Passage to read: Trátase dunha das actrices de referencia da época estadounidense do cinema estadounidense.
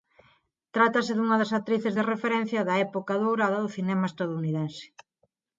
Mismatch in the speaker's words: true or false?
true